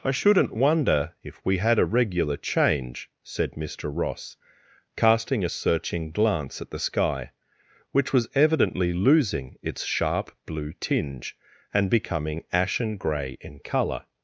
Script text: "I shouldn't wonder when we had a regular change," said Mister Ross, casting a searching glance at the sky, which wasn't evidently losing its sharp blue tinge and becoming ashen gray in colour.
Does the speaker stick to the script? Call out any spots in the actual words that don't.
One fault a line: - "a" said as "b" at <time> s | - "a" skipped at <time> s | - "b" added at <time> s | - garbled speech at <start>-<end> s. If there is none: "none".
- "when" said as "if" at 1.2 s
- "wasn't" said as "was" at 8.1 s